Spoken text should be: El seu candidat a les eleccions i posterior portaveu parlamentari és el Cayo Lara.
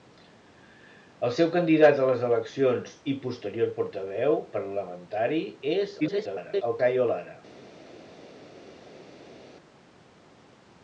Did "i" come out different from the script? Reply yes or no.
no